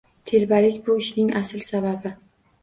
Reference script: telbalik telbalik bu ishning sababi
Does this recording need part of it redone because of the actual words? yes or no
yes